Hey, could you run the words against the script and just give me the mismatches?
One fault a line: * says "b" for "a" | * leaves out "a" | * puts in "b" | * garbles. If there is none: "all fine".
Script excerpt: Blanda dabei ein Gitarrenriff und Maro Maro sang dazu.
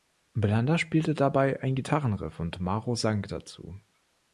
* puts in "spielte"
* leaves out "Maro"